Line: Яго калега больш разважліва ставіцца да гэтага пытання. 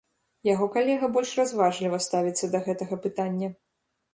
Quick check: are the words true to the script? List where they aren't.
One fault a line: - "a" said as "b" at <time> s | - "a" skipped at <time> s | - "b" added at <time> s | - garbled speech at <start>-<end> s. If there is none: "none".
none